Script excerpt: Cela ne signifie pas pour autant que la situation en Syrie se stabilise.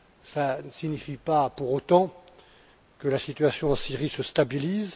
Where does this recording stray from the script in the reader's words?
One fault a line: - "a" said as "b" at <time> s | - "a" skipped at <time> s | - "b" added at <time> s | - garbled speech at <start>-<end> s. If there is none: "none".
none